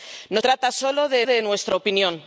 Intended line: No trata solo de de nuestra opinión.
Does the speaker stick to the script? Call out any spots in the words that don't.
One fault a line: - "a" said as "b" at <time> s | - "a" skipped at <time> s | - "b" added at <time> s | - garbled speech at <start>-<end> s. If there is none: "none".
none